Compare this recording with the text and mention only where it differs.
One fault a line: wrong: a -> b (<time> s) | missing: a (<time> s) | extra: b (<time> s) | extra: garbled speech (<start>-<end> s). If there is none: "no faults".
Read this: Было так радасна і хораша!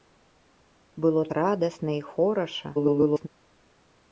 missing: так (1.2 s)
extra: garbled speech (2.7-3.3 s)